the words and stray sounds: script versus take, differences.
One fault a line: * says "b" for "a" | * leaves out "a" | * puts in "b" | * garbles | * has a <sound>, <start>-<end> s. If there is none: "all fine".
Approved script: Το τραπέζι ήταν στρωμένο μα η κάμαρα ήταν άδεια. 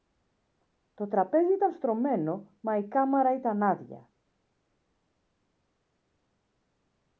all fine